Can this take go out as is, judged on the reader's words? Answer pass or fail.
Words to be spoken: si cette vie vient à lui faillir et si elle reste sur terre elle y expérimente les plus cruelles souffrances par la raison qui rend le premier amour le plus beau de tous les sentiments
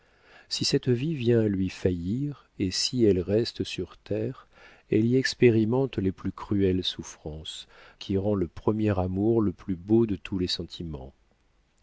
fail